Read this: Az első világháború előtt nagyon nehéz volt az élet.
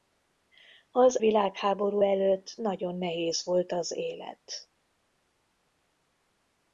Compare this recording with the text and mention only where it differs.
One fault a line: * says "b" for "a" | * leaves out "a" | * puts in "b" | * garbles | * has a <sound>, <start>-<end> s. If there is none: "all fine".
* leaves out "első"